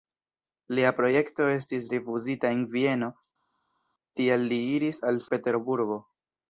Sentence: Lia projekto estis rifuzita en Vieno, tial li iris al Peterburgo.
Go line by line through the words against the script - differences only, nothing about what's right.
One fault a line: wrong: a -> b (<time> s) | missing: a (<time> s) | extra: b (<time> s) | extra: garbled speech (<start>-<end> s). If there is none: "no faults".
no faults